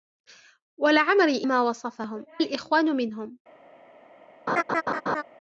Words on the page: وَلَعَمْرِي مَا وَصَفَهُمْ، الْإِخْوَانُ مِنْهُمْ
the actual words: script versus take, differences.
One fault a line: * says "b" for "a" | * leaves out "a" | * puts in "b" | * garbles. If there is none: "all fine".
all fine